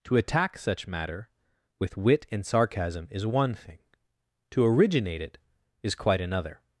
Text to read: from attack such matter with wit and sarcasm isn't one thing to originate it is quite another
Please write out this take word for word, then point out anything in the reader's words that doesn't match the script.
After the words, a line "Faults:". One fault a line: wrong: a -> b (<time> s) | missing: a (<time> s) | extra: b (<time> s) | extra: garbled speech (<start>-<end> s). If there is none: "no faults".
to attack such matter with wit and sarcasm is one thing to originate it is quite another
Faults:
wrong: from -> to (0.1 s)
wrong: isn't -> is (3.1 s)